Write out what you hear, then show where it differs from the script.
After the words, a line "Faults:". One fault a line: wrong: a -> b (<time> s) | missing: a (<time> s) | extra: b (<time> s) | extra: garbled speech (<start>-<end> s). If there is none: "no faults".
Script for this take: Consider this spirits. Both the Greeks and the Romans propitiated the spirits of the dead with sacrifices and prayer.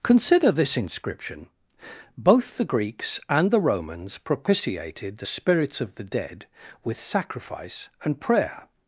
Consider this inscription. Both the Greeks and the Romans propitiated the spirits of the dead with sacrifice and prayer.
Faults:
wrong: spirits -> inscription (0.8 s)
wrong: sacrifices -> sacrifice (7.0 s)